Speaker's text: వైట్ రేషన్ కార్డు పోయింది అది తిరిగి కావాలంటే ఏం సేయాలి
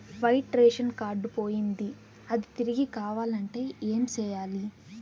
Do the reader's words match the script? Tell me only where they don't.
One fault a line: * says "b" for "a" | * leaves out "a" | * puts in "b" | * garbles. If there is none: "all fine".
all fine